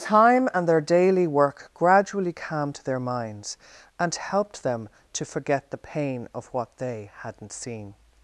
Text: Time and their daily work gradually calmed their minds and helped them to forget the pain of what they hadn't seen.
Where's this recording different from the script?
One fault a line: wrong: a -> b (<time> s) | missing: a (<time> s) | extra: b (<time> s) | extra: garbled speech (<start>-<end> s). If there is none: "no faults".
no faults